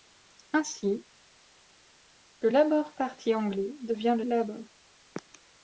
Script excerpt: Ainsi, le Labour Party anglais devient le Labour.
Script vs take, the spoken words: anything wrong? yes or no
no